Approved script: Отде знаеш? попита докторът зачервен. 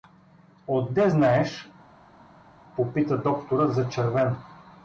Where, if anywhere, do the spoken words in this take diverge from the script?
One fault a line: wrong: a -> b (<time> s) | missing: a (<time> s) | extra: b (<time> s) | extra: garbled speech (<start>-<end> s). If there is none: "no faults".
no faults